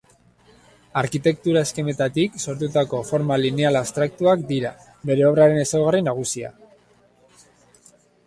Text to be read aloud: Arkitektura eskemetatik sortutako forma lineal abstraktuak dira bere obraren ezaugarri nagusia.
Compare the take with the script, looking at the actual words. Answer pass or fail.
pass